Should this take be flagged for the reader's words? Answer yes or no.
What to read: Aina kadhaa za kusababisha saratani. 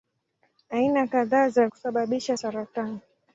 no